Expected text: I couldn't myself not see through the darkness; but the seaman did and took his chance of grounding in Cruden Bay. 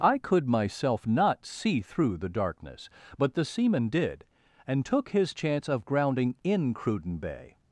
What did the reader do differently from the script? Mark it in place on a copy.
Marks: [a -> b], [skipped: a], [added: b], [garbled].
I [couldn't -> could] myself not see through the darkness; but the seaman did and took his chance of grounding in Cruden Bay.